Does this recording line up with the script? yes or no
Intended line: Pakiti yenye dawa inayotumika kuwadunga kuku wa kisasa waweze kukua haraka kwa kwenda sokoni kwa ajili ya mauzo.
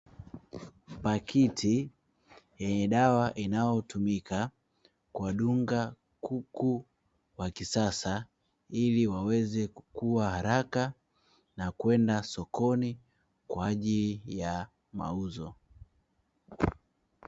no